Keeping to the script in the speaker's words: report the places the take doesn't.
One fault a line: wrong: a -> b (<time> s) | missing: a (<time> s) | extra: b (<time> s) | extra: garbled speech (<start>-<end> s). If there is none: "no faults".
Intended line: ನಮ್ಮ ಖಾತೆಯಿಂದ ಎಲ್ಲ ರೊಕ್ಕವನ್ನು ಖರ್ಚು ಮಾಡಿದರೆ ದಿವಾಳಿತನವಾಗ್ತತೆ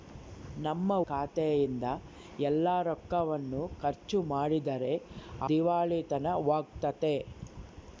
no faults